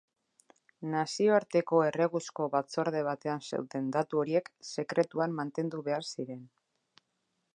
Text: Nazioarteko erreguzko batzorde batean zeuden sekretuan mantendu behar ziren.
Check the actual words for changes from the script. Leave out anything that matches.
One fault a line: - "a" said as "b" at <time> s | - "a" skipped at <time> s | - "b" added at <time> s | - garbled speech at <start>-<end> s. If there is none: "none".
- "datu horiek" added at 4.0 s